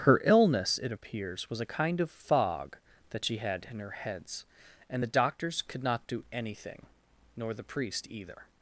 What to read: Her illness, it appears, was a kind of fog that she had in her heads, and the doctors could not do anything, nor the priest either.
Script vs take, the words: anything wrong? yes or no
no